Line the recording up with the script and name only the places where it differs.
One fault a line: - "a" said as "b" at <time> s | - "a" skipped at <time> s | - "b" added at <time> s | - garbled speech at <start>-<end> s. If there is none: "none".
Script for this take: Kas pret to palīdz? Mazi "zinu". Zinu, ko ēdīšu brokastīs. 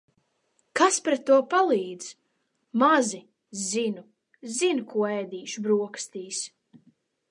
none